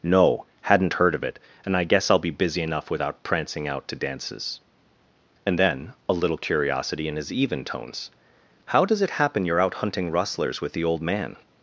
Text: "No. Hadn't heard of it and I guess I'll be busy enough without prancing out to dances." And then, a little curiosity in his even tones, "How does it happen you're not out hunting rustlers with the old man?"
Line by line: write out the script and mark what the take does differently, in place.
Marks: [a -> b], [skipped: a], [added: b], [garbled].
"No. Hadn't heard of it and I guess I'll be busy enough without prancing out to dances." And then, a little curiosity in his even tones, "How does it happen you're [skipped: not] out hunting rustlers with the old man?"